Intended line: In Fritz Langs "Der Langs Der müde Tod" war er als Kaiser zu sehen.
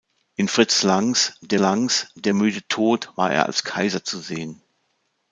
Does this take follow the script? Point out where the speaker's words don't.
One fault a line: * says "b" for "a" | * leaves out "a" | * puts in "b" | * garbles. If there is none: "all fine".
all fine